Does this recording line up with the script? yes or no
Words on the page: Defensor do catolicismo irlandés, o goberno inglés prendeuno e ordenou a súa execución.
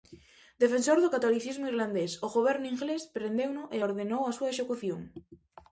yes